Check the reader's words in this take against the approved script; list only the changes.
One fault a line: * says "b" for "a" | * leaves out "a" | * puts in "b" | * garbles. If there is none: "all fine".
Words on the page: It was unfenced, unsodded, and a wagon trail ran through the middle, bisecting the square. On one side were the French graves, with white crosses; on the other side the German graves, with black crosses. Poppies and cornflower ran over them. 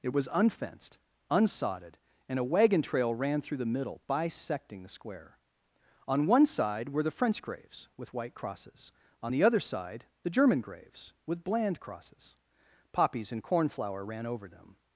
* says "bland" for "black"